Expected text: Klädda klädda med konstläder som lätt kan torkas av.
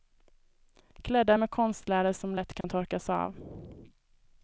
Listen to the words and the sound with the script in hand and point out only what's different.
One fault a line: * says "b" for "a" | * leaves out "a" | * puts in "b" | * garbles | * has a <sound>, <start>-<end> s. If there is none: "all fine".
* leaves out "klädda"
* has a dropout, 2.6-2.6 s